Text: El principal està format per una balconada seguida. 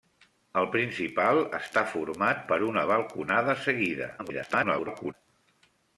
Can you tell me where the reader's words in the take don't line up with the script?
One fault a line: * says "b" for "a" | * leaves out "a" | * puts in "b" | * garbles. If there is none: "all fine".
* garbles